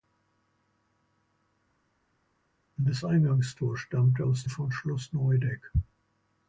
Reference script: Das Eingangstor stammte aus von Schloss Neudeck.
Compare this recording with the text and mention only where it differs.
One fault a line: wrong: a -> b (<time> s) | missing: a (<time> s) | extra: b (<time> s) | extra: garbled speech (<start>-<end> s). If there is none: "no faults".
no faults